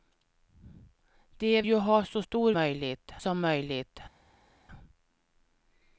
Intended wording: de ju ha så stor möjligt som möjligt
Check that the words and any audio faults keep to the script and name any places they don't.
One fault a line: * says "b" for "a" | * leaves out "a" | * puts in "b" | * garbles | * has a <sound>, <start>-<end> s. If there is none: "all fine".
all fine